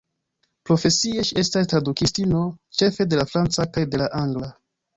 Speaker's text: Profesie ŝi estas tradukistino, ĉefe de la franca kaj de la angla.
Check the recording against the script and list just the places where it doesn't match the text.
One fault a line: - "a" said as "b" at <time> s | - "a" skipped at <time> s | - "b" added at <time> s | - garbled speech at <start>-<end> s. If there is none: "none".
none